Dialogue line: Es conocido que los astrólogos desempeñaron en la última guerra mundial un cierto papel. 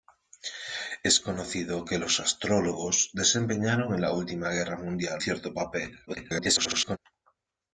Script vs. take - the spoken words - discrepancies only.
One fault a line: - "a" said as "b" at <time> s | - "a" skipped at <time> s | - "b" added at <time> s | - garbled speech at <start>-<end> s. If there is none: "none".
- "un" skipped at 5.2 s
- garbled speech at 6.1-7.0 s